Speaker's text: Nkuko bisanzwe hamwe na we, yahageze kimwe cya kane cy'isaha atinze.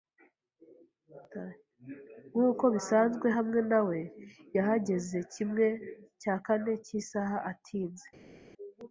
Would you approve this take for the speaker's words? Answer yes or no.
yes